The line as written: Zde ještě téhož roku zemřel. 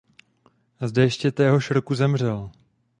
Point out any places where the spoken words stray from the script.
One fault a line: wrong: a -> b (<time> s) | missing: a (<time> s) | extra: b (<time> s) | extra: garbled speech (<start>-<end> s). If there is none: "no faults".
no faults